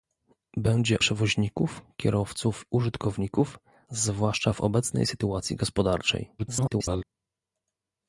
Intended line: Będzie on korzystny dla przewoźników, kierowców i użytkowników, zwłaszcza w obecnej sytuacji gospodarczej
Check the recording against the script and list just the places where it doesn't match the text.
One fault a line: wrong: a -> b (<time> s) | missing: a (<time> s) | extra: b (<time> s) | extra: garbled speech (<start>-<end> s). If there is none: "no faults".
missing: on korzystny dla (1.0 s)
missing: i (2.6 s)
extra: garbled speech (6.4-7.0 s)